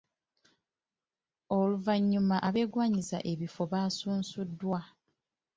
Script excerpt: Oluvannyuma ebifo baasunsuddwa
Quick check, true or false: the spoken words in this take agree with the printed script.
false